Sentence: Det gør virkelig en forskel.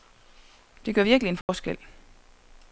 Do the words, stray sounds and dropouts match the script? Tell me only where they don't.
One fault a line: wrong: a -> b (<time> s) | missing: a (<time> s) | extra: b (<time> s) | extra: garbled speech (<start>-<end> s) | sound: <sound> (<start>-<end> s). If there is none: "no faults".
sound: dropout (1.4-1.5 s)